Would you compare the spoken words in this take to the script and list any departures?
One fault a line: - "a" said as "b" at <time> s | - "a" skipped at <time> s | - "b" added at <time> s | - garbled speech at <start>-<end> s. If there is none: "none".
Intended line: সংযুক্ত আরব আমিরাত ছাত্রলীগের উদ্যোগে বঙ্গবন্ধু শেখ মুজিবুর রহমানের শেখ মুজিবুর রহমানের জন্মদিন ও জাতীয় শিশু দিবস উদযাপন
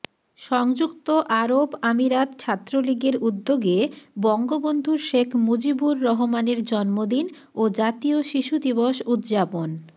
- "শেখ মুজিবুর রহমানের" skipped at 6.6 s